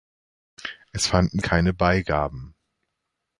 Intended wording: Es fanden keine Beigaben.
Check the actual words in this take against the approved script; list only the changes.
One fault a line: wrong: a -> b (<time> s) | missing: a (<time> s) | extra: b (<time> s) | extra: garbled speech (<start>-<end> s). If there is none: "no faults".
no faults